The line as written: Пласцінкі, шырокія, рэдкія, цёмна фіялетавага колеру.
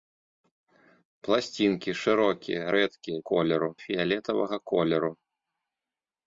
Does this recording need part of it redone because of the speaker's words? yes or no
yes